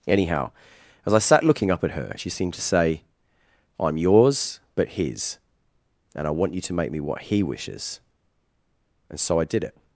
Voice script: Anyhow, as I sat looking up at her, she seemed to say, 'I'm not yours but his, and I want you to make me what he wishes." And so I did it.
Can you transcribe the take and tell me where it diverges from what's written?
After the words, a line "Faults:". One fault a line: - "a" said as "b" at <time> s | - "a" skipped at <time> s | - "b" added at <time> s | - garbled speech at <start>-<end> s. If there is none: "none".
Anyhow, as I sat looking up at her, she seemed to say, 'I'm yours but his, and I want you to make me what he wishes." And so I did it.
Faults:
- "not" skipped at 4.0 s